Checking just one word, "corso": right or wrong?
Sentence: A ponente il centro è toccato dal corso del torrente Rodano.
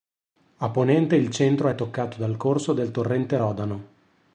right